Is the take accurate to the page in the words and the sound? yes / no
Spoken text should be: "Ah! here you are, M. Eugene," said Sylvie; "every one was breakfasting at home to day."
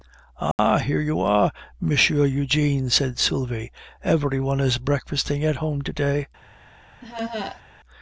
no